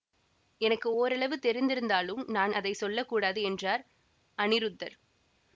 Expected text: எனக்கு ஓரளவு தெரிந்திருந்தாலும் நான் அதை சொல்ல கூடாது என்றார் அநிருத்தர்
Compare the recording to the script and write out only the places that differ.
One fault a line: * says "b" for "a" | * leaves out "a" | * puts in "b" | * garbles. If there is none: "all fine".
all fine